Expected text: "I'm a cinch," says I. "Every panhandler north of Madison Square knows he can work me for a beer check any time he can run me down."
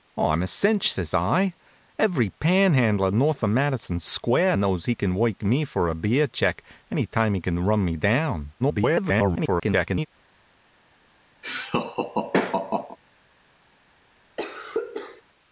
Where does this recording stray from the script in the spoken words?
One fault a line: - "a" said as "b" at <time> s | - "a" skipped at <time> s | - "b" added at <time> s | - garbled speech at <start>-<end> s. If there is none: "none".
- garbled speech at 8.6-10.1 s